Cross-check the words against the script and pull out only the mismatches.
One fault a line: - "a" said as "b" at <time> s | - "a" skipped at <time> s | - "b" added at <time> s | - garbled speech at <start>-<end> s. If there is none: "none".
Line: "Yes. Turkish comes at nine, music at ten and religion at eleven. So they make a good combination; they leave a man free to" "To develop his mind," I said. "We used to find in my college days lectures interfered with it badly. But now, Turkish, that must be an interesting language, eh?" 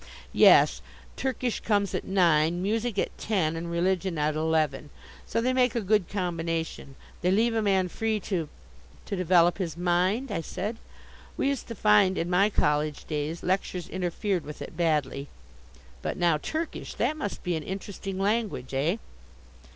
none